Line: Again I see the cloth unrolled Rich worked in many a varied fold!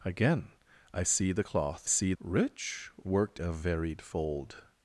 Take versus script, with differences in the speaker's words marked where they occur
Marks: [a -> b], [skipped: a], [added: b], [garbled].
Again I see the cloth [unrolled -> see] Rich worked [skipped: in many] a varied fold!